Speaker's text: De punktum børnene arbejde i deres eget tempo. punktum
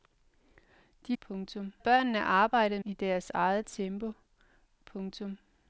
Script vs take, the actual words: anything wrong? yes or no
no